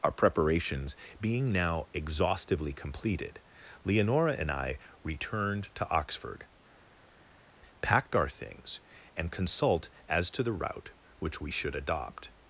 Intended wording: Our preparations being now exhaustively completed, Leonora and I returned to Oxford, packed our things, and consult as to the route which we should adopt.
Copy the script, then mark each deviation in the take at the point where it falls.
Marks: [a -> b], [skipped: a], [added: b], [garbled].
Our preparations being now exhaustively completed, Leonora and I returned to Oxford, packed our things, and consult as to the route which we should adopt.